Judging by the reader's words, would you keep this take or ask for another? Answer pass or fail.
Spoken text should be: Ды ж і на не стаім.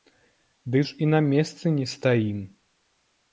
fail